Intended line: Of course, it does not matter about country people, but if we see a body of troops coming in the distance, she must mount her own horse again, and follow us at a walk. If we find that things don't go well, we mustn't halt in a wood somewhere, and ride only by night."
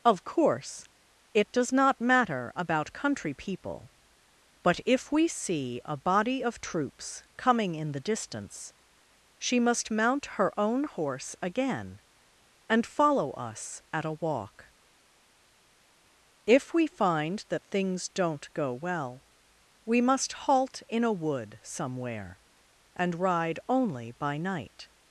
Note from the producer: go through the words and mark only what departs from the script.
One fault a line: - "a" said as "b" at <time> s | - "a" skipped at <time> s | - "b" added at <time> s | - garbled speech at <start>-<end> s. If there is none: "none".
- "mustn't" said as "must" at 20.0 s